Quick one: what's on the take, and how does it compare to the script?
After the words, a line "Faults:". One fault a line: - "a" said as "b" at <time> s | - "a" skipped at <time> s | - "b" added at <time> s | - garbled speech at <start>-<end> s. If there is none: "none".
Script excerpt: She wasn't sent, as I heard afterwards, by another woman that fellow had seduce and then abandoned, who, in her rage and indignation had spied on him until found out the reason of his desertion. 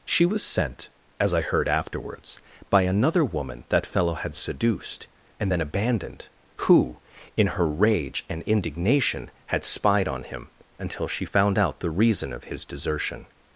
She was sent, as I heard afterwards, by another woman that fellow had seduced and then abandoned, who, in her rage and indignation had spied on him until she found out the reason of his desertion.
Faults:
- "wasn't" said as "was" at 0.2 s
- "seduce" said as "seduced" at 4.3 s
- "she" added at 11.1 s